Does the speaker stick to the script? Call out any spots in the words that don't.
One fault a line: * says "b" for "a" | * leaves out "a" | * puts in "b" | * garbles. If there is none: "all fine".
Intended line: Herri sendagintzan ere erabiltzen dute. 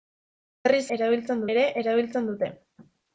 * says "erabiltzen" for "sendagintzan"